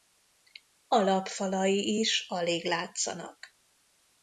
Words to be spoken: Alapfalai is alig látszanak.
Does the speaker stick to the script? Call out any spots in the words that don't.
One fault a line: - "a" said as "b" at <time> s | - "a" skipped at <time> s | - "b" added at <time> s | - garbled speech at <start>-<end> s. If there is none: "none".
none